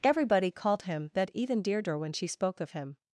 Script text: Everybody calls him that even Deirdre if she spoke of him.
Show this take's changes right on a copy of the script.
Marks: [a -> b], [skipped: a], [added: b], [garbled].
Everybody [calls -> called] him that even Deirdre [if -> when] she spoke of him.